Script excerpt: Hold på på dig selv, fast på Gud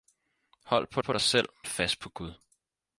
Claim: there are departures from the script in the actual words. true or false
false